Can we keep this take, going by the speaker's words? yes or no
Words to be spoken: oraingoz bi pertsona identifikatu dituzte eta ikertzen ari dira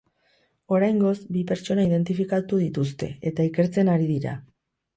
yes